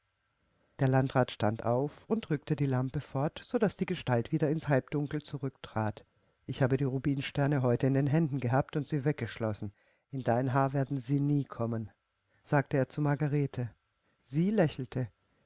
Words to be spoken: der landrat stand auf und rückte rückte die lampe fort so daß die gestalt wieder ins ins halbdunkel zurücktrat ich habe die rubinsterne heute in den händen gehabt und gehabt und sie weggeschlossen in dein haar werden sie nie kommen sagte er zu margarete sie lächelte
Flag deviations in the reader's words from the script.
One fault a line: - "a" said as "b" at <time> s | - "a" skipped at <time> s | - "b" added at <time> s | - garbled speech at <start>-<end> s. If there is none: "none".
- "rückte" skipped at 2.5 s
- "ins" skipped at 4.7 s
- "gehabt und" skipped at 8.9 s